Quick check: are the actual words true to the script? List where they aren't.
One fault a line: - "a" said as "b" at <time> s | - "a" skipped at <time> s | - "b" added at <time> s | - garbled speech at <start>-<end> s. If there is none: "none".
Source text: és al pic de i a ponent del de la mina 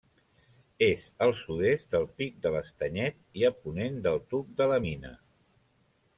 - "sud est del" added at 1.4 s
- "l'estanyet" added at 2.5 s
- "tuc" added at 4.3 s